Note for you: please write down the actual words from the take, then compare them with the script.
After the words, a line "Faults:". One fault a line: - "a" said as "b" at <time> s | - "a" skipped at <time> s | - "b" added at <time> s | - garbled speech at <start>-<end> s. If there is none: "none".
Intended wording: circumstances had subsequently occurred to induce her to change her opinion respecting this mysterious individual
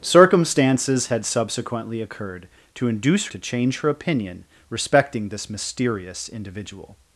circumstances had subsequently occurred to induce to change her opinion respecting this mysterious individual
Faults:
- "her" skipped at 3.3 s